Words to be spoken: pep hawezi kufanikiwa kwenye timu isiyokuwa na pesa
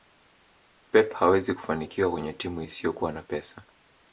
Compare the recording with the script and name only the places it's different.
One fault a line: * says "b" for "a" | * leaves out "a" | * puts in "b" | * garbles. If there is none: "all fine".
all fine